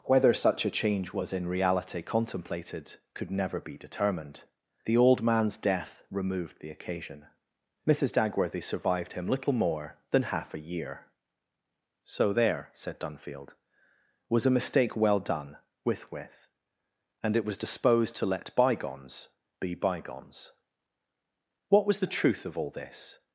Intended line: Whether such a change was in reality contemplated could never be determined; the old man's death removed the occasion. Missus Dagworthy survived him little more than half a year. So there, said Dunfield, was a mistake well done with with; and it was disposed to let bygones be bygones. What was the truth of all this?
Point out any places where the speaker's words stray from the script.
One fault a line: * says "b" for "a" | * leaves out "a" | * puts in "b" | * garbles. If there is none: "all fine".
all fine